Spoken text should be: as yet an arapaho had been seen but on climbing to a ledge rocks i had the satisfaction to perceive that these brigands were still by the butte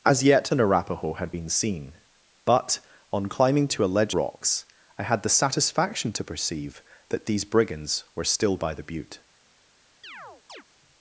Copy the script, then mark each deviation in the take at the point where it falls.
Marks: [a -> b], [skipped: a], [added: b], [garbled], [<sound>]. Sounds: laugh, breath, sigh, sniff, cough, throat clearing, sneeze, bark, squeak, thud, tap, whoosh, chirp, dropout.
as yet an arapaho had been seen but on climbing to a ledge rocks i had the satisfaction to perceive that these brigands were still by the butte [chirp]